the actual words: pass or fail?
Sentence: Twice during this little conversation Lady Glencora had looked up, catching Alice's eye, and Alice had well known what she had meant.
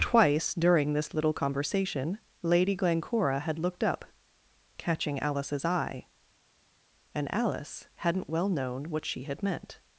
fail